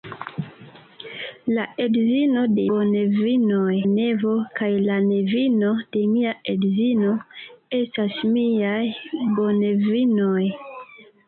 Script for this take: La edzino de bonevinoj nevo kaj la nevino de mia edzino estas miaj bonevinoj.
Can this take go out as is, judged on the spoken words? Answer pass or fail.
pass